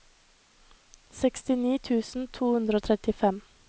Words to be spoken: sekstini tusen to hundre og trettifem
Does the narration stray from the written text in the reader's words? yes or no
no